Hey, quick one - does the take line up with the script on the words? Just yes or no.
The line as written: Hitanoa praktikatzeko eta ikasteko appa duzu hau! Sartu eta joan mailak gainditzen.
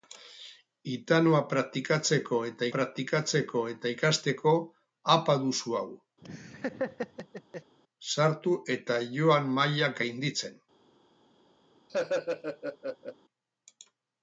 no